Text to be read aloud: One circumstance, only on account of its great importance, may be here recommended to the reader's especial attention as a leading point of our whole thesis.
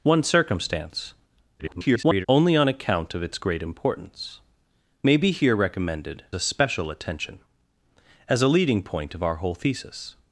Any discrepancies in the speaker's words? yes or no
yes